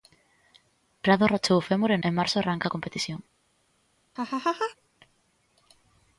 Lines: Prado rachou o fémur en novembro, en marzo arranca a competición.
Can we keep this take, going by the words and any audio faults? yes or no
no